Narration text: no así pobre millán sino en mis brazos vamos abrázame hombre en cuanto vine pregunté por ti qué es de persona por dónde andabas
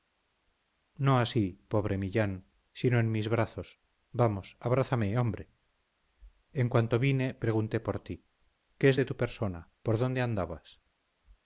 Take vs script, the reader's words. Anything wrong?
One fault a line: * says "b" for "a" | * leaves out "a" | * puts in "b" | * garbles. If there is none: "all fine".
* puts in "tu"